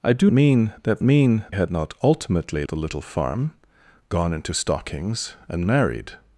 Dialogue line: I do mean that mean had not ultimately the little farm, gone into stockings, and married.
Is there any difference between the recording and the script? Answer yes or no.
no